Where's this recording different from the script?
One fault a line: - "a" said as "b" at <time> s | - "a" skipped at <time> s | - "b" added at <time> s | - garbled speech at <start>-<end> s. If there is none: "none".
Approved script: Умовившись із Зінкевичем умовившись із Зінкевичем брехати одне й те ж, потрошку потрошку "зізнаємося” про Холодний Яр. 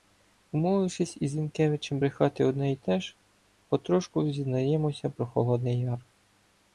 - "умовившись із Зінкевичем" skipped at 2.0 s
- "потрошку" skipped at 4.3 s